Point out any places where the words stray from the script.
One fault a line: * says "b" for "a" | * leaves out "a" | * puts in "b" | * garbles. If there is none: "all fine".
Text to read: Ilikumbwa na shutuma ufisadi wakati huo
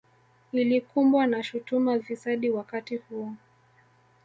all fine